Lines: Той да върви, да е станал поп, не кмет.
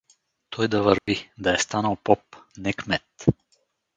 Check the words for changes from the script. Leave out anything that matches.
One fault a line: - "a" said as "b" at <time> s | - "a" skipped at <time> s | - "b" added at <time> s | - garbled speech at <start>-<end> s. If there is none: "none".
none